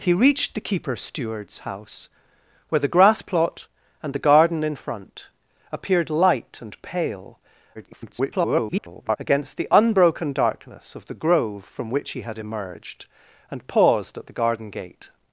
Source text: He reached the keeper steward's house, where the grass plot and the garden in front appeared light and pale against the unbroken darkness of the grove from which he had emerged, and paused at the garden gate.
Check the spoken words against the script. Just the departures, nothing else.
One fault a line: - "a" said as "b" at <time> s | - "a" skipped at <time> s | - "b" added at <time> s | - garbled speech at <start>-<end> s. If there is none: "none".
- garbled speech at 7.7-9.2 s